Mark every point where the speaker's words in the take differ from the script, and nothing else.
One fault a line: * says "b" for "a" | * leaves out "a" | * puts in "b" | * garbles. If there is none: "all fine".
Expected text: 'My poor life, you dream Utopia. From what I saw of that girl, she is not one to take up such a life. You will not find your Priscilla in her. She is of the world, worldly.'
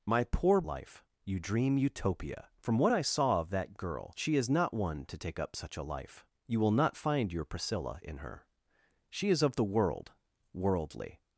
all fine